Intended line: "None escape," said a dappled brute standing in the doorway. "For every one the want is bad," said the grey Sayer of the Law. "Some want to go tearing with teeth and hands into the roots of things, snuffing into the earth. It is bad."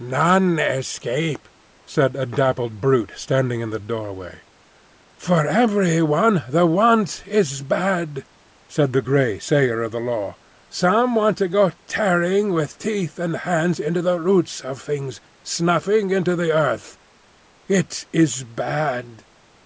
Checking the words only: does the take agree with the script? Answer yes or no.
yes